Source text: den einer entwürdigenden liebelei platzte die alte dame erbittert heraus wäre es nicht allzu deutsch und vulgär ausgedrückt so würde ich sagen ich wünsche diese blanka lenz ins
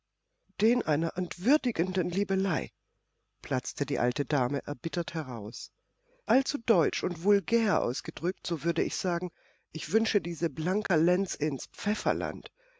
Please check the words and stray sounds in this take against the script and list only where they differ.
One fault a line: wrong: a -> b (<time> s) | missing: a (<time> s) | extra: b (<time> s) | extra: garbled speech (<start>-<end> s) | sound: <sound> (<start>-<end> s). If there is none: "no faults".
missing: wäre es nicht (5.7 s)
sound: dropout (10.9-10.9 s)